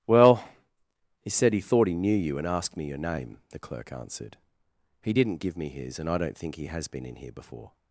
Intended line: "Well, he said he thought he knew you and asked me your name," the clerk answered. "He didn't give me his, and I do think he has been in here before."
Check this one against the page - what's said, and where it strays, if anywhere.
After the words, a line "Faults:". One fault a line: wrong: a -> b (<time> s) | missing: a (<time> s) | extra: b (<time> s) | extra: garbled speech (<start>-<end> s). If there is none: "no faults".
"Well, he said he thought he knew you and asked me your name," the clerk answered. "He didn't give me his, and I don't think he has been in here before."
Faults:
wrong: do -> don't (6.2 s)